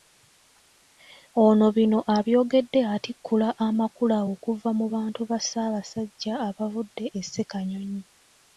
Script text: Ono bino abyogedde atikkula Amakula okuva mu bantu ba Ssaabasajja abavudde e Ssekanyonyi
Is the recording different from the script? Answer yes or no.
no